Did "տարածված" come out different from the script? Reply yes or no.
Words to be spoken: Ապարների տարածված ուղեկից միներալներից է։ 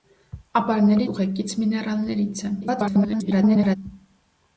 yes